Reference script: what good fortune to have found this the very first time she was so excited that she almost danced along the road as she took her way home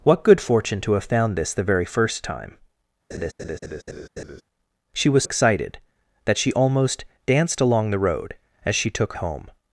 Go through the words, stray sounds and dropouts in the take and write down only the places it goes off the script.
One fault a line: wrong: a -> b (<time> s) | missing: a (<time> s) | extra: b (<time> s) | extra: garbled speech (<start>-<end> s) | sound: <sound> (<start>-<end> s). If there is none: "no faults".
sound: laugh (3.1-4.4 s)
missing: so (5.2 s)
missing: her way (9.1 s)